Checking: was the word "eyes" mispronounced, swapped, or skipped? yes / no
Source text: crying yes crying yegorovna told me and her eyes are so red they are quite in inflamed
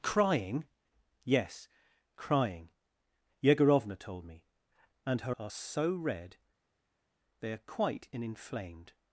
yes